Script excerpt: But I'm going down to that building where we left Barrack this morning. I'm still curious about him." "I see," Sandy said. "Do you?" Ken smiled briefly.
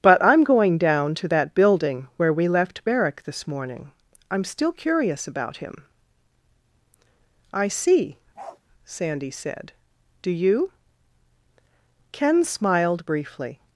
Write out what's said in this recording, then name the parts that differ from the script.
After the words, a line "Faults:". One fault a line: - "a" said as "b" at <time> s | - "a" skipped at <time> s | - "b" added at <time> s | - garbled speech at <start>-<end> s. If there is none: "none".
But I'm going down to that building where we left Barrack this morning. I'm still curious about him." "I see," Sandy said. "Do you?" Ken smiled briefly.
Faults:
none